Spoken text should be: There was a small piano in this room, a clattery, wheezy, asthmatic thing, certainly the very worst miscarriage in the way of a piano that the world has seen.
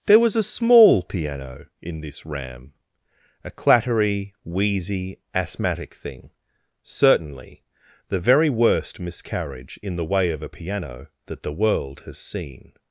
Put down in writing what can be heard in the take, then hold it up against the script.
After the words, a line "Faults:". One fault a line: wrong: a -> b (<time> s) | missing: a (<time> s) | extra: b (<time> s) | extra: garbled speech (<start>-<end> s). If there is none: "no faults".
There was a small piano in this ram, a clattery, wheezy, asthmatic thing, certainly the very worst miscarriage in the way of a piano that the world has seen.
Faults:
wrong: room -> ram (2.2 s)